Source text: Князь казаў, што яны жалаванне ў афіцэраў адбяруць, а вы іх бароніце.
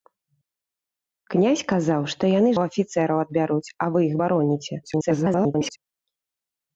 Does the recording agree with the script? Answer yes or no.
no